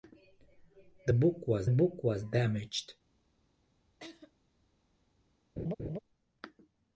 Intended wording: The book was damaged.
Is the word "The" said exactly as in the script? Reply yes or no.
yes